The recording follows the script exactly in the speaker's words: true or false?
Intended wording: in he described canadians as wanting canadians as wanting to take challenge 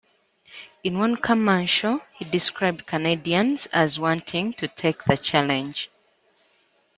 false